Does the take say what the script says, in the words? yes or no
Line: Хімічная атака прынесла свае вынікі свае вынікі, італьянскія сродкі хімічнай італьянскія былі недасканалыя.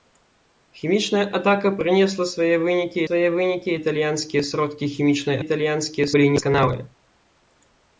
yes